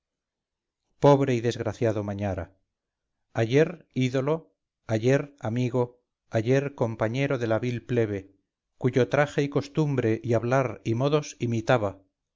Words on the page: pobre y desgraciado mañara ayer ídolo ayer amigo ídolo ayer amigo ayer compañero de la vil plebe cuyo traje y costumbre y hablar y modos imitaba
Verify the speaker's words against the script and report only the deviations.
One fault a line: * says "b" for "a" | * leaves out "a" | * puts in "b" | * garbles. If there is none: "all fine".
* leaves out "ídolo ayer amigo"